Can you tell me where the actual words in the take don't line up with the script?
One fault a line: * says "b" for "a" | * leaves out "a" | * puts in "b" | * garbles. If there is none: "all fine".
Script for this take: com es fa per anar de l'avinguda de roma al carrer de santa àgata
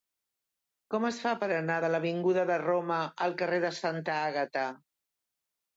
all fine